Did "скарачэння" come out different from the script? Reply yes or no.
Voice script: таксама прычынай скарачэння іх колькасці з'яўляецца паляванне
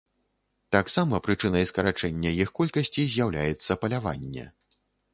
no